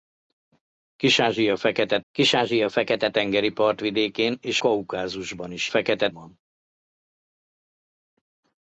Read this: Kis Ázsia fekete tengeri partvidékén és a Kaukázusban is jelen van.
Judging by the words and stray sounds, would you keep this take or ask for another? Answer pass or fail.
fail